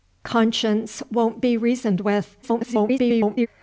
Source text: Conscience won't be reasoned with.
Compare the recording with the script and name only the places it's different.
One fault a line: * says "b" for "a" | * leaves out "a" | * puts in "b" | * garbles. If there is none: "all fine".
* garbles